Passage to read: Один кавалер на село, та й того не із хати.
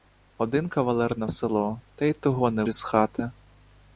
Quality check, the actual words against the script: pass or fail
pass